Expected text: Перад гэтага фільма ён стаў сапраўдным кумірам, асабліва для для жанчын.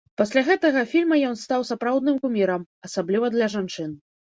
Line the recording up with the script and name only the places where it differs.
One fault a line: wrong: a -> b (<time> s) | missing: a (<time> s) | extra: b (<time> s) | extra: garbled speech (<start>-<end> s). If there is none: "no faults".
wrong: Перад -> Пасля (0.2 s)
missing: для (3.5 s)